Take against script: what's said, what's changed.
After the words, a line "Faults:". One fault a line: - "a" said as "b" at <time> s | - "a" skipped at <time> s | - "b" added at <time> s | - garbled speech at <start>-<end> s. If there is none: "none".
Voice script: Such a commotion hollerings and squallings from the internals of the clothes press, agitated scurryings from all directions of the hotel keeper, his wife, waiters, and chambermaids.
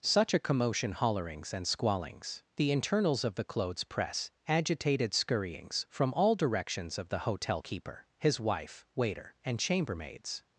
Such a commotion hollerings and squallings the internals of the clothes press, agitated scurryings from all directions of the hotel keeper, his wife, waiter, and chambermaids.
Faults:
- "from" skipped at 2.4 s
- "waiters" said as "waiter" at 9.0 s